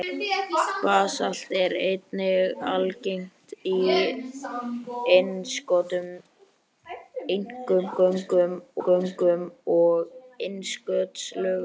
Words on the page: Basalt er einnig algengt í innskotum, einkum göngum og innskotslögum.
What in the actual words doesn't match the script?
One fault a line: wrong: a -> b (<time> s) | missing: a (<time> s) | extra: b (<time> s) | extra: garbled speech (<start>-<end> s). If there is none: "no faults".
extra: göngum (8.9 s)